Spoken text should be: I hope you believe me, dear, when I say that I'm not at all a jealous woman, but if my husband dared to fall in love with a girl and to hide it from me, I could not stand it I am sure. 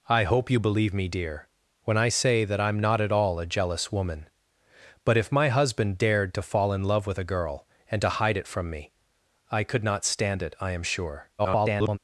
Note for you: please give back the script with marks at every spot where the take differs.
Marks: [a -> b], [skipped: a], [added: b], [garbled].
I hope you believe me, dear, when I say that I'm not at all a jealous woman, but if my husband dared to fall in love with a girl and to hide it from me, I could not stand it I am sure. [garbled]